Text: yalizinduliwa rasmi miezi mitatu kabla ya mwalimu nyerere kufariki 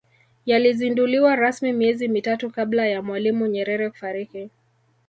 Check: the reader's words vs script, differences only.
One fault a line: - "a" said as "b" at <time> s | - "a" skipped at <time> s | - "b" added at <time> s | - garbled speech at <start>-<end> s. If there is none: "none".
none